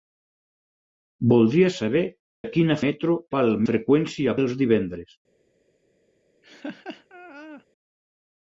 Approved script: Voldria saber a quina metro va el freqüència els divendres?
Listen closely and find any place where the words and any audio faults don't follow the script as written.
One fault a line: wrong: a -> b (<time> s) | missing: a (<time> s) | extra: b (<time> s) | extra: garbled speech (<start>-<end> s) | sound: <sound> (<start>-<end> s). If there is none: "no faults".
sound: laugh (6.4-7.7 s)